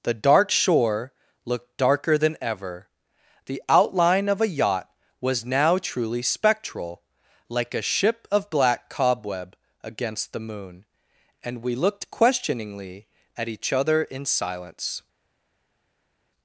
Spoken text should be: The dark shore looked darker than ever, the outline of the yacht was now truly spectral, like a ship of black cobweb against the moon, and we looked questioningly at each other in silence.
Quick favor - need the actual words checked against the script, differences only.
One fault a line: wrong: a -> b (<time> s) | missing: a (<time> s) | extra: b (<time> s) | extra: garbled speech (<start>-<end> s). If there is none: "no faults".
wrong: the -> a (4.4 s)